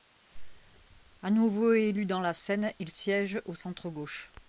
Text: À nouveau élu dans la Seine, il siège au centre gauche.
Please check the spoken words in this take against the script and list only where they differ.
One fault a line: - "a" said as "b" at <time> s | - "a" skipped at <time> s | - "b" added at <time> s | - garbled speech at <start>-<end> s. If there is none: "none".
none